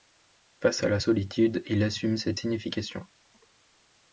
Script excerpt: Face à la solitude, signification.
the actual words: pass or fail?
fail